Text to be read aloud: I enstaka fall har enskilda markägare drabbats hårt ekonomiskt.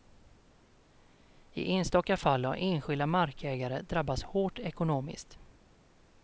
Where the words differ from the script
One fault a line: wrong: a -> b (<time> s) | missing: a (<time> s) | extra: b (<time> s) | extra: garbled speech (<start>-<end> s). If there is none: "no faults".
no faults